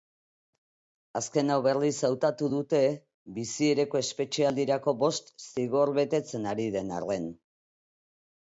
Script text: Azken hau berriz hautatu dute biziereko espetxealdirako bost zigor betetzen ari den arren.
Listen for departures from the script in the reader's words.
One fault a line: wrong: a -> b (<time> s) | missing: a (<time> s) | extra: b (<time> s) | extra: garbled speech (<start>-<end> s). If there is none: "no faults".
no faults